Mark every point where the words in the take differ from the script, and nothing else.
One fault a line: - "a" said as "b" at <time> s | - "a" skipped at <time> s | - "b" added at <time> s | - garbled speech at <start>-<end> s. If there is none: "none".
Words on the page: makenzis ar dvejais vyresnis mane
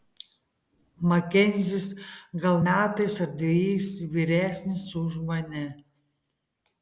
- "gal metais" added at 2.4 s
- "už" added at 5.0 s